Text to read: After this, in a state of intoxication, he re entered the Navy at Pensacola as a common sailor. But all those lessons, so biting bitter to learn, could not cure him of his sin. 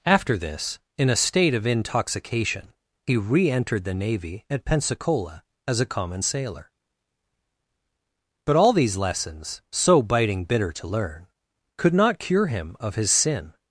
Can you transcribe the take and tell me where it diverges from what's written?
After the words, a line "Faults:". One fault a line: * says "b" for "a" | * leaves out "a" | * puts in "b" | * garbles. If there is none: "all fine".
After this, in a state of intoxication, he re entered the Navy at Pensacola as a common sailor. But all these lessons, so biting bitter to learn, could not cure him of his sin.
Faults:
* says "these" for "those"